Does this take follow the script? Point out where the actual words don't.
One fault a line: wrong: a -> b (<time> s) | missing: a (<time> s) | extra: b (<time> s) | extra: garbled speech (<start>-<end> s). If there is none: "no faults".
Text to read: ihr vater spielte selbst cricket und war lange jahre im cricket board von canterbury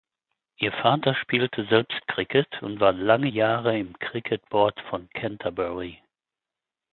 no faults